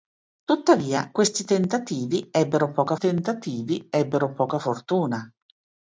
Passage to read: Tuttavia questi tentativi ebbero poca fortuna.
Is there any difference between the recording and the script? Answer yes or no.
yes